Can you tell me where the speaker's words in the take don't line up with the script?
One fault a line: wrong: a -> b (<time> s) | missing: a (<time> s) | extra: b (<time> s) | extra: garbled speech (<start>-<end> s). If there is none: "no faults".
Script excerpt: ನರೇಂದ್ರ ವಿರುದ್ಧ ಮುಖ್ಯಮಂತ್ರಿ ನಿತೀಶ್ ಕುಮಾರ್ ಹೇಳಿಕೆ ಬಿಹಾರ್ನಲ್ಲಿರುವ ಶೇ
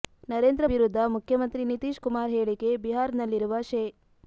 no faults